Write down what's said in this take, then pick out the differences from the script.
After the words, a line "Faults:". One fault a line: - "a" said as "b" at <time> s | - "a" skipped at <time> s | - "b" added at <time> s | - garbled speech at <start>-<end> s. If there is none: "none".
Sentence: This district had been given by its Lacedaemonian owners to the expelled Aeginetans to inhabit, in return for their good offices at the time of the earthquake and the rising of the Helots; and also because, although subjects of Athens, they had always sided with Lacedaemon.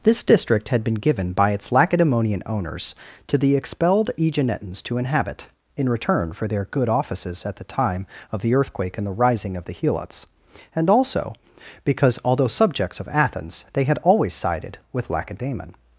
This district had been given by its Lacedaemonian owners to the expelled Aeginetans to inhabit, in return for their good offices at the time of the earthquake and the rising of the Helots; and also because, although subjects of Athens, they had always sided with Lacedaemon.
Faults:
none